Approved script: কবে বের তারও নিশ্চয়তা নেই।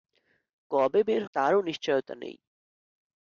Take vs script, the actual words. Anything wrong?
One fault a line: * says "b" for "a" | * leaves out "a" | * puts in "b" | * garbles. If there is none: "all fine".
all fine